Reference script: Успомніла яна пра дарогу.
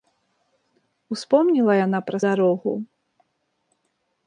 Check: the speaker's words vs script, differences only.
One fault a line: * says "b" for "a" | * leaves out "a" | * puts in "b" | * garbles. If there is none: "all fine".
all fine